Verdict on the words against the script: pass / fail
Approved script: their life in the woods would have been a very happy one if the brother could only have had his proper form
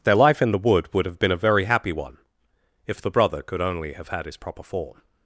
fail